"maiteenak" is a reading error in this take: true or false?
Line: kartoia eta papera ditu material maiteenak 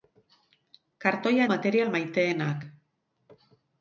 false